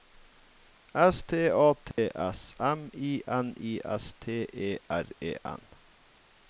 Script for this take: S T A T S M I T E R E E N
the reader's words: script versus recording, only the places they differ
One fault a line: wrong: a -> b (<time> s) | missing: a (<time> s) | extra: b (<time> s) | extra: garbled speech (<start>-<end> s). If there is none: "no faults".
extra: N I S (3.3 s)
missing: E (5.3 s)